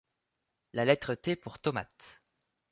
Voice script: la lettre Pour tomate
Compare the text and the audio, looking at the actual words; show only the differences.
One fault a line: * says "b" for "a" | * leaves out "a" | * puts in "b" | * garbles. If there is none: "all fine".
* puts in "T"